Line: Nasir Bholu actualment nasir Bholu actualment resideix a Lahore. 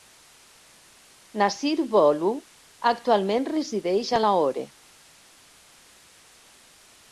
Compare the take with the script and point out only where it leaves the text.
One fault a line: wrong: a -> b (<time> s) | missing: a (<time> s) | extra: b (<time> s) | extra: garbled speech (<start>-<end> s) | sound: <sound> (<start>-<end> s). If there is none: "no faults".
missing: nasir Bholu actualment (3.5 s)